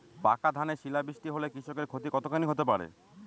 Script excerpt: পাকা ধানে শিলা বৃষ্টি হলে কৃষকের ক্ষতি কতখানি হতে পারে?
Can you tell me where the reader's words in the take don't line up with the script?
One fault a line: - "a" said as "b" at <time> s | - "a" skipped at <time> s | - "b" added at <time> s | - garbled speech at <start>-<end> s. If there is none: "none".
none